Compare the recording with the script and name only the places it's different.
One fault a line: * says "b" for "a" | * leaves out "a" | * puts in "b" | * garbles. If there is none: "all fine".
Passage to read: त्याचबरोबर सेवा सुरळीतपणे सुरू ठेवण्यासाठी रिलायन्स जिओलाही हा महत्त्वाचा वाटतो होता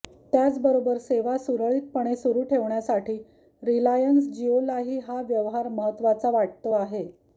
* puts in "व्यवहार"
* says "आहे" for "होता"